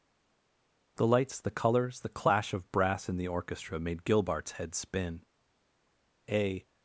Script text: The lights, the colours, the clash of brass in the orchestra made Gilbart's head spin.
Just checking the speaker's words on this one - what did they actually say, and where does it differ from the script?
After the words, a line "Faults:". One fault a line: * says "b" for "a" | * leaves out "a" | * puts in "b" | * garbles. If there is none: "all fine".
The lights, the colours, the clash of brass in the orchestra made Gilbart's head spin. A
Faults:
* puts in "A"